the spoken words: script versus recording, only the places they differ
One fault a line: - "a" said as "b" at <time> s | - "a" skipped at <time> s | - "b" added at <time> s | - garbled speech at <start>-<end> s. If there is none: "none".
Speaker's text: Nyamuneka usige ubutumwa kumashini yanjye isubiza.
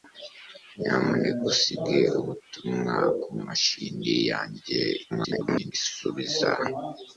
- garbled speech at 5.1-5.7 s